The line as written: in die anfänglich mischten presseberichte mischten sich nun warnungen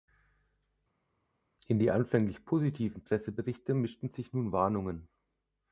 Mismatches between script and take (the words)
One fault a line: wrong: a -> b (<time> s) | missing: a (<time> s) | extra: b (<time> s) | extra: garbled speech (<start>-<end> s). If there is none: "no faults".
wrong: mischten -> positiven (2.5 s)